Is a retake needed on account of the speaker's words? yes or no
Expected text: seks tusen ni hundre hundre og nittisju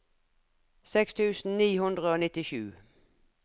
yes